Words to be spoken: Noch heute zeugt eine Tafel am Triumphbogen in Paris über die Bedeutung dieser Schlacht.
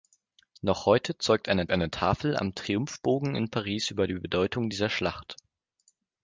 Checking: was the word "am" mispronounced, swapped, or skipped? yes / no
no